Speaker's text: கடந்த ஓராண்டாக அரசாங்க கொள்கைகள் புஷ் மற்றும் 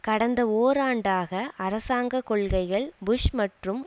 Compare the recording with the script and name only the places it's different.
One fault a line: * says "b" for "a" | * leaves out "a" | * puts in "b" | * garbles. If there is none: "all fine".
all fine